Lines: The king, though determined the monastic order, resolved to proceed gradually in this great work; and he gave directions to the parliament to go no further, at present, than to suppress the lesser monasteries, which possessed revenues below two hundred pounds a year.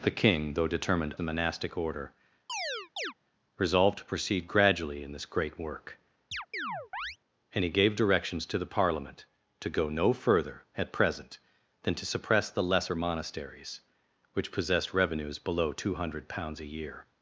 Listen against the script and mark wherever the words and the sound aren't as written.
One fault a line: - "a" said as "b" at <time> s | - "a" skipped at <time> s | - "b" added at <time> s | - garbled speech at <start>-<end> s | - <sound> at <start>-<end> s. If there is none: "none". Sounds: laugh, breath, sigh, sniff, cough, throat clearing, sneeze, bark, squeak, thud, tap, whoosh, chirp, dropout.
- chirp at 2.5-3.1 s
- chirp at 6.3-7.2 s